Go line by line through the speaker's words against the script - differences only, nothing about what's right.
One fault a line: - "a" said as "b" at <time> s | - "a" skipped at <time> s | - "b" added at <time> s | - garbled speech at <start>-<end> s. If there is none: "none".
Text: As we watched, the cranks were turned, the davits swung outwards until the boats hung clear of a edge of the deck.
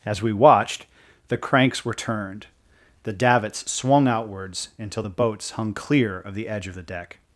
- "a" said as "the" at 6.3 s